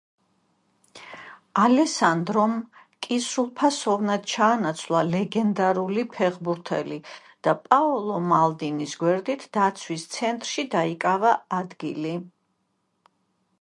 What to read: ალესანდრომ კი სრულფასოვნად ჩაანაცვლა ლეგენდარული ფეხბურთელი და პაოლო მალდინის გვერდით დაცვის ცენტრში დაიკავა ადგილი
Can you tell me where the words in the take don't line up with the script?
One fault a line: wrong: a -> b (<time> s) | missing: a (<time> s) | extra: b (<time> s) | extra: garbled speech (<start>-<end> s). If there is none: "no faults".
no faults